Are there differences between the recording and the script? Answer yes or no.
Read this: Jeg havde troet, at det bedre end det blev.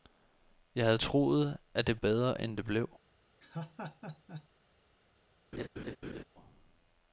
no